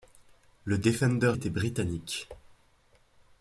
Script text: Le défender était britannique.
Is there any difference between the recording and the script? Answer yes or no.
no